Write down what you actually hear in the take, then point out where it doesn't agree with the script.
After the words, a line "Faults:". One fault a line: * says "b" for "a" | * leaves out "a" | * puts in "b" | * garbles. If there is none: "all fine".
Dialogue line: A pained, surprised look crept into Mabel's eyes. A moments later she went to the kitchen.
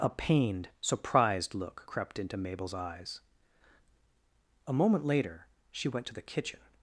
A pained, surprised look crept into Mabel's eyes. A moment later she went to the kitchen.
Faults:
* says "moment" for "moments"